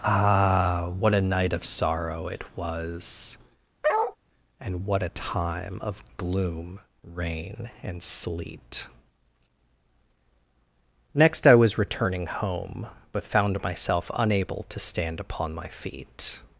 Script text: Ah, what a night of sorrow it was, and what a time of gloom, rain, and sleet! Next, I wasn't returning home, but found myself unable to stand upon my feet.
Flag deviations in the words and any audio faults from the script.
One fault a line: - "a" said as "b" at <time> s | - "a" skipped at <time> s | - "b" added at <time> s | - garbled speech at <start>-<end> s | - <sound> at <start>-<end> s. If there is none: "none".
- bark at 3.8-4.2 s
- "wasn't" said as "was" at 11.5 s